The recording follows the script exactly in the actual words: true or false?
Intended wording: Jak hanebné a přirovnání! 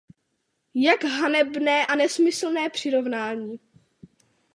false